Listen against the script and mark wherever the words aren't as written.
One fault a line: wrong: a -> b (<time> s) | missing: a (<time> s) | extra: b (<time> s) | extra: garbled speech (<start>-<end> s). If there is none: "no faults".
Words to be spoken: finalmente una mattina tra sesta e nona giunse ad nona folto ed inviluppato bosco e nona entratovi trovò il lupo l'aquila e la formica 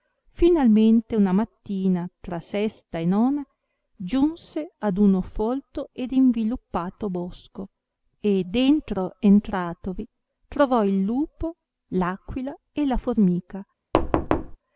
wrong: nona -> uno (5.0 s)
wrong: nona -> dentro (8.4 s)